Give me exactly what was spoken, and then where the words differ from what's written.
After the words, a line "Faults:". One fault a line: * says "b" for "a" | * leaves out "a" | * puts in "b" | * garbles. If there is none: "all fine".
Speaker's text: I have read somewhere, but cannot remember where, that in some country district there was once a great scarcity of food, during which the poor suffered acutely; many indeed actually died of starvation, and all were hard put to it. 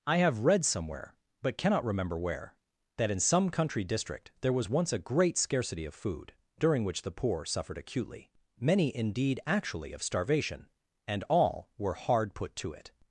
I have read somewhere, but cannot remember where, that in some country district there was once a great scarcity of food, during which the poor suffered acutely; many indeed actually of starvation, and all were hard put to it.
Faults:
* leaves out "died"